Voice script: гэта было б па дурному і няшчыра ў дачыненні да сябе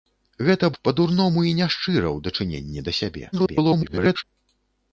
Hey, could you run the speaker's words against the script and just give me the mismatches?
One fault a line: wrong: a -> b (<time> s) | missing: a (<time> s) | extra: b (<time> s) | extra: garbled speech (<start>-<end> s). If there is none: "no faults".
missing: было (0.7 s)
extra: garbled speech (3.3-4.2 s)